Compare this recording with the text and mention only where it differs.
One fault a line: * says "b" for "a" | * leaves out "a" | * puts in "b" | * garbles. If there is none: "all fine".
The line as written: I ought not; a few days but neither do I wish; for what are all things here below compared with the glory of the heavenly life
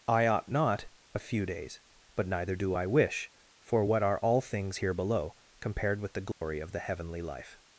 all fine